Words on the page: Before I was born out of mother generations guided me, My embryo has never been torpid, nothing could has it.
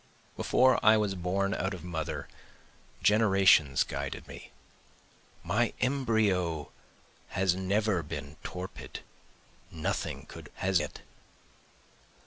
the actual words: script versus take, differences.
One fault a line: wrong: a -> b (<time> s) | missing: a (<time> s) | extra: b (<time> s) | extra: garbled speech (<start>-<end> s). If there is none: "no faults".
no faults